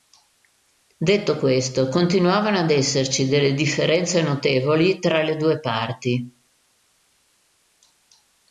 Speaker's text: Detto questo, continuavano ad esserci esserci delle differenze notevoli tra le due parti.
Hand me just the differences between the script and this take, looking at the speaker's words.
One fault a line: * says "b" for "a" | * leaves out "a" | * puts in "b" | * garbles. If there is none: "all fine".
* leaves out "esserci"